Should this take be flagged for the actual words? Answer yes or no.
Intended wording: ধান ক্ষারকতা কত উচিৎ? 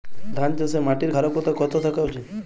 yes